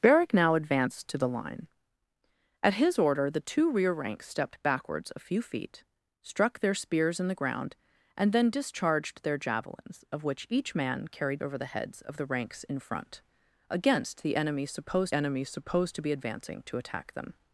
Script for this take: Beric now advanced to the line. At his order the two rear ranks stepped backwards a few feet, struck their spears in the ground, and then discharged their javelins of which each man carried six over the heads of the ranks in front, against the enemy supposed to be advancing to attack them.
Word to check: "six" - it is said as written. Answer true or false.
false